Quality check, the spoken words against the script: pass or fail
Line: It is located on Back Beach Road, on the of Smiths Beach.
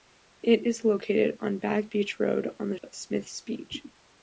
pass